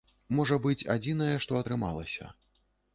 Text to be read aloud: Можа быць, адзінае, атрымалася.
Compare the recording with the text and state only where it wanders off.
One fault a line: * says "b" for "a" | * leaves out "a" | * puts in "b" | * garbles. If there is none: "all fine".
* puts in "што"